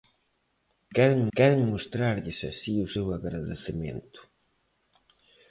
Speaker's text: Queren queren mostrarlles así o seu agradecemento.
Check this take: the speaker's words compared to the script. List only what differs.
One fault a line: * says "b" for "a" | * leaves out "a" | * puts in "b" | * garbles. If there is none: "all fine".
all fine